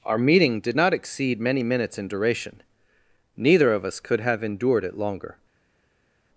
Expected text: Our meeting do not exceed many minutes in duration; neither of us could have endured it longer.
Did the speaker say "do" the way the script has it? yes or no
no